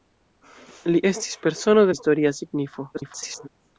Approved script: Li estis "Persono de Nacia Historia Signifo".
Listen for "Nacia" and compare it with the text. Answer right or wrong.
wrong